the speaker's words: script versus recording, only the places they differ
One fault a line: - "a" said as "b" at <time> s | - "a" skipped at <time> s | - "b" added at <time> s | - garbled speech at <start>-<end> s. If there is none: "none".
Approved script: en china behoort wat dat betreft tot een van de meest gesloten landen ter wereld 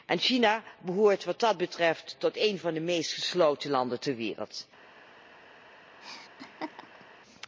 none